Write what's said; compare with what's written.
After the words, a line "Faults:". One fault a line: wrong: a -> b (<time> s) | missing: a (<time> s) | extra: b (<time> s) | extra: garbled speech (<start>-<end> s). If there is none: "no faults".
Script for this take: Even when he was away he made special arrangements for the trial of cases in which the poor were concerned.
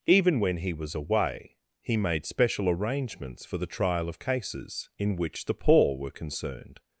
Even when he was away he made special arrangements for the trial of cases in which the poor were concerned.
Faults:
no faults